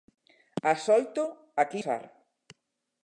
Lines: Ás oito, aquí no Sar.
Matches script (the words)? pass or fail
fail